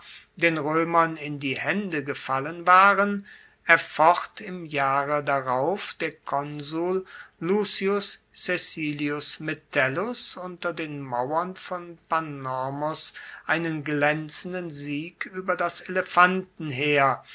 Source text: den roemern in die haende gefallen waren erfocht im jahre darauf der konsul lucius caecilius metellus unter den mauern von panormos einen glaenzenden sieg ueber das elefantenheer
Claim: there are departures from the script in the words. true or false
false